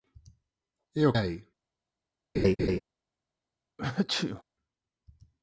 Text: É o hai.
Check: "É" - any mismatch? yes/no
no